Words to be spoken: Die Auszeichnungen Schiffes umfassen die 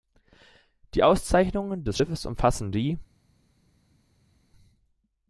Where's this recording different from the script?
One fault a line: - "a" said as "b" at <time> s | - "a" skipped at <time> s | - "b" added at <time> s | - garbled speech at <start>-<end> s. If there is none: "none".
- "des" added at 1.8 s